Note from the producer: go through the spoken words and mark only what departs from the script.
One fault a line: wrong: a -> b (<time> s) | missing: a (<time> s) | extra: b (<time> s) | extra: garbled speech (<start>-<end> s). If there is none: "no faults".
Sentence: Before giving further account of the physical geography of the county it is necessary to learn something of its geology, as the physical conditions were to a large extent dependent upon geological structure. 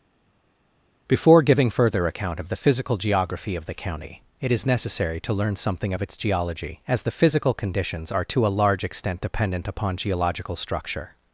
wrong: were -> are (8.1 s)